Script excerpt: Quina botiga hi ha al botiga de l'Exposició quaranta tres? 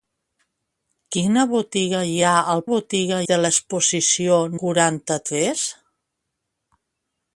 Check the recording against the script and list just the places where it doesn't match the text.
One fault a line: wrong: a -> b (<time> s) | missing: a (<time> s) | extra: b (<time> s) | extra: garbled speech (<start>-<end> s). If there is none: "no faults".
no faults